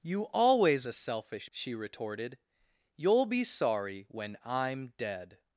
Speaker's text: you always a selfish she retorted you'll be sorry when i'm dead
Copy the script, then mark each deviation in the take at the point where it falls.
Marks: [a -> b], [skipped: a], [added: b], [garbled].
you always a selfish she retorted you'll be sorry when i'm dead